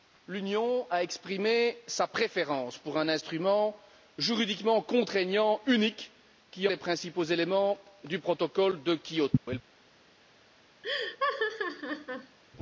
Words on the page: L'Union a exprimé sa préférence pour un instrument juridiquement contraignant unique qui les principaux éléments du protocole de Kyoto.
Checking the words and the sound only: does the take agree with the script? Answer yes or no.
no